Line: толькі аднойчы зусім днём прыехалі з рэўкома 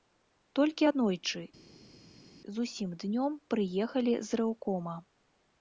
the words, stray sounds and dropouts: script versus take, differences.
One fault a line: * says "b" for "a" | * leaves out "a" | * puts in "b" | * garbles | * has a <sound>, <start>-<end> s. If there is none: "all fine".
all fine